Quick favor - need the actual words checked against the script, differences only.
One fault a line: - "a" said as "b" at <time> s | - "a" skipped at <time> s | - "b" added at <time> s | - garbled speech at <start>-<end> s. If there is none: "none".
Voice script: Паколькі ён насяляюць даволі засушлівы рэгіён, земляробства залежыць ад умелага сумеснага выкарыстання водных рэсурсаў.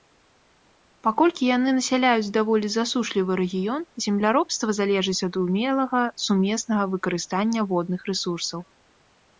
- "ён" said as "яны" at 1.6 s